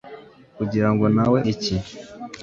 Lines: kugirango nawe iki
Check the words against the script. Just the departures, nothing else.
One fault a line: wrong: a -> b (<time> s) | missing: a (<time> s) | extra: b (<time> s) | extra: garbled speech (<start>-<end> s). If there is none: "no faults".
no faults